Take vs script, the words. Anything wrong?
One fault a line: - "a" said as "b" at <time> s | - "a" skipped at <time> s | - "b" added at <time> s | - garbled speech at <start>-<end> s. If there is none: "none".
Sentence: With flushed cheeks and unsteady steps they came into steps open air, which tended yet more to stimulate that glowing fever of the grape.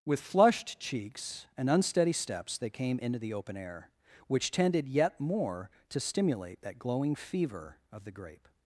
- "steps" said as "the" at 3.2 s